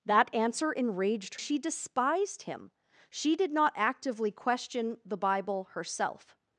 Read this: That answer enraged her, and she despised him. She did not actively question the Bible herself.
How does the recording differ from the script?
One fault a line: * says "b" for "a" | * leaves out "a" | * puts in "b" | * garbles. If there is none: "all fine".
* leaves out "her and"